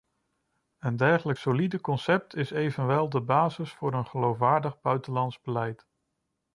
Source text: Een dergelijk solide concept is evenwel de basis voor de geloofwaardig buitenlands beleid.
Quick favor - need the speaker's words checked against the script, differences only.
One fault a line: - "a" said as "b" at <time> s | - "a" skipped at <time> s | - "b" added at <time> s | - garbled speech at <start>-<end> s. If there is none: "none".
- "de" said as "een" at 3.9 s